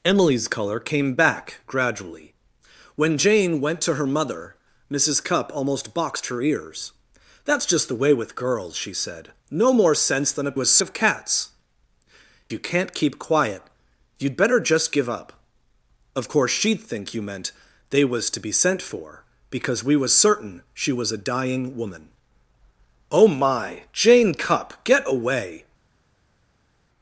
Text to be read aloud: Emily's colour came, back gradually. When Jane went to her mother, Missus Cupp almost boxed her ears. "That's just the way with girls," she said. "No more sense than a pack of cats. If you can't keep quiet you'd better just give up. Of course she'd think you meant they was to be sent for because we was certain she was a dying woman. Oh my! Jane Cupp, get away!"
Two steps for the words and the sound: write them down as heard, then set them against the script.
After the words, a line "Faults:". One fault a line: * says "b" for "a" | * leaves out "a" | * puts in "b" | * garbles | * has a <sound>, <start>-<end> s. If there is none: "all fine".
Emily's colour came, back gradually. When Jane went to her mother, Missus Cupp almost boxed her ears. "That's just the way with girls," she said. "No more sense than a was of cats. You can't keep quiet you'd better just give up. Of course she'd think you meant they was to be sent for because we was certain she was a dying woman. Oh my! Jane Cupp, get away!"
Faults:
* says "was" for "pack"
* leaves out "If"